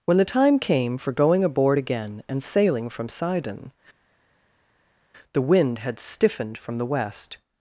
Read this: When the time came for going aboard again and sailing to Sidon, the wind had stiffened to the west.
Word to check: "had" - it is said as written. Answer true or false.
true